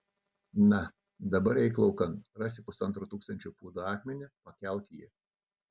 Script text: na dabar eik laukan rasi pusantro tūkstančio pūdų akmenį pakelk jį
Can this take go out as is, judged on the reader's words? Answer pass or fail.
pass